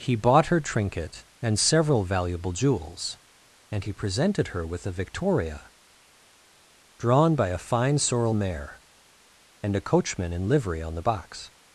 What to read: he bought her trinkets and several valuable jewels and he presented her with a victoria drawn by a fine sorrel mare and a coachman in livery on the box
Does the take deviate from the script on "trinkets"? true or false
true